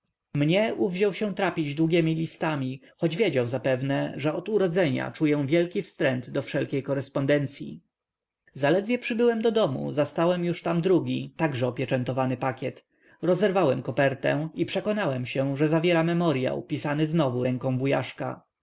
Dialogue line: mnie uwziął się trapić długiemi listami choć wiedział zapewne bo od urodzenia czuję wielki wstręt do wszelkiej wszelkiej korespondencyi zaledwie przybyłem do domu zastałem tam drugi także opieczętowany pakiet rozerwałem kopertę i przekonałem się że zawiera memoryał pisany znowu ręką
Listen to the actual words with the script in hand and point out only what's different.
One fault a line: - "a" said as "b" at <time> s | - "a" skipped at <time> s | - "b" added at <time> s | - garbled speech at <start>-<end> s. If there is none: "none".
- "bo" said as "że" at 4.2 s
- "wszelkiej" skipped at 6.8 s
- "już" added at 10.4 s